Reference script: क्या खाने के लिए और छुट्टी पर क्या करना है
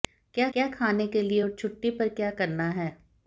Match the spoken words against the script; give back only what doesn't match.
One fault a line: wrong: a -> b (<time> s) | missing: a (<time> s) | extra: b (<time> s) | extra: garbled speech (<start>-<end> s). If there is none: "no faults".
extra: क्या (0.5 s)